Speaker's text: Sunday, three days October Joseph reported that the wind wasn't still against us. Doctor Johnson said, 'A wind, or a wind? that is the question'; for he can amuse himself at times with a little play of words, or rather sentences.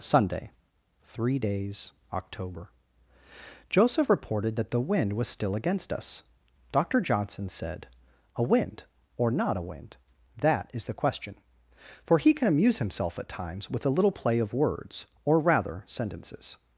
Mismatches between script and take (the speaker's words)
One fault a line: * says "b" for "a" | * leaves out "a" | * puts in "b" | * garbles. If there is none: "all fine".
* says "was" for "wasn't"
* puts in "not"